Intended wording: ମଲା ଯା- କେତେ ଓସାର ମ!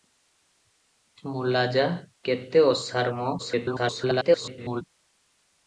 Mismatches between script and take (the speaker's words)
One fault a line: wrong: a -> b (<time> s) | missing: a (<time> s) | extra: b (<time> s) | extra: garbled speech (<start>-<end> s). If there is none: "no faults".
extra: garbled speech (3.4-4.8 s)